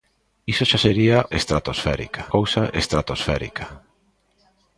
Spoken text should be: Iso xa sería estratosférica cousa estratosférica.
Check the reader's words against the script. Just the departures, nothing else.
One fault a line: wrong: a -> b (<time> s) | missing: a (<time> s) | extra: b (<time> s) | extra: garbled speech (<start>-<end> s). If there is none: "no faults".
no faults